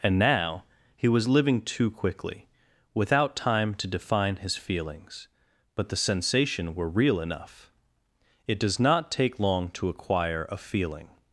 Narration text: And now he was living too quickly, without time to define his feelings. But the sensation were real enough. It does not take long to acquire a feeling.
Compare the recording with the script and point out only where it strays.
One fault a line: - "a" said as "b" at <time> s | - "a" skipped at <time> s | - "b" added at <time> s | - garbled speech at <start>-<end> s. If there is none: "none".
none